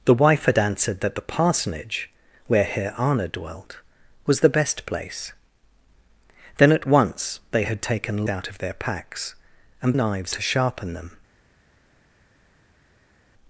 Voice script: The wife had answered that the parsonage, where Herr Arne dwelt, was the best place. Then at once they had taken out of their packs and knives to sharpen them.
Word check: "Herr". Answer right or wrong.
right